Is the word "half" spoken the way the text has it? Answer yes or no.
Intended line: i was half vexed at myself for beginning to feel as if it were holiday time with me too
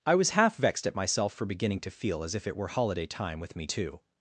yes